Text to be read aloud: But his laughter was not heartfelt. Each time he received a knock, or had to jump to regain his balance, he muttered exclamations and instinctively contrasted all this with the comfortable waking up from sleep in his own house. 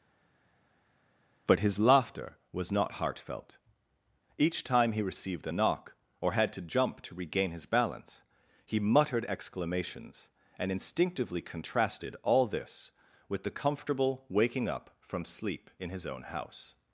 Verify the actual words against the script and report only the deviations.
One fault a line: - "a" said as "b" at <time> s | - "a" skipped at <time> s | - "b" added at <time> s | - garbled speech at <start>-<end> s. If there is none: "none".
none